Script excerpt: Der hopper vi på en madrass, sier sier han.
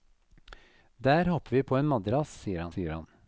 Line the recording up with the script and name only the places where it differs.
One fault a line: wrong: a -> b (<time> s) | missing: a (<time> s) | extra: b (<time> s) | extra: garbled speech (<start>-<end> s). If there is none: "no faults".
no faults